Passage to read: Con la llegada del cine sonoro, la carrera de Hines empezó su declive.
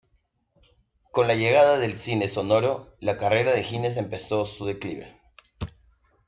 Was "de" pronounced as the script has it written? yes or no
yes